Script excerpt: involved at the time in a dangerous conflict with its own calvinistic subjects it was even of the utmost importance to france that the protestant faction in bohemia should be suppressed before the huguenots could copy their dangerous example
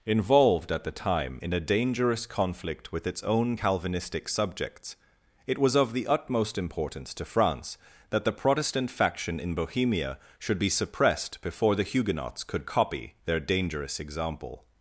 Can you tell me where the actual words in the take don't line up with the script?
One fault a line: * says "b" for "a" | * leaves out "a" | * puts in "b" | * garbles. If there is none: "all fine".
* leaves out "even"